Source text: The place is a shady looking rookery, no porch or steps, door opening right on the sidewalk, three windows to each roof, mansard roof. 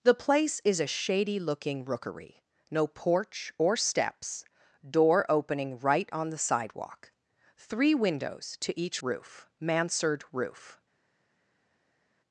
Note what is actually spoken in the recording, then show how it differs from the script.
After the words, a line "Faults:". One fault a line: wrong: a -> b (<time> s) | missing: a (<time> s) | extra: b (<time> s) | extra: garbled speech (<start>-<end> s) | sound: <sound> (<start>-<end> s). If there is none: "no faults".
The place is a shady looking rookery, no porch or steps, door opening right on the sidewalk, three windows to each roof, mansard roof.
Faults:
no faults